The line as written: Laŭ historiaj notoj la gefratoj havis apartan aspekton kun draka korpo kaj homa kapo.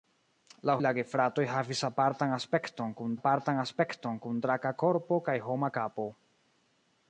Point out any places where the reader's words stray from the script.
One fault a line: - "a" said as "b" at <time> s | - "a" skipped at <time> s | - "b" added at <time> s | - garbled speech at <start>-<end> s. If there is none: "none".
- "historiaj notoj" skipped at 0.8 s
- "apartan aspekton kun" added at 3.2 s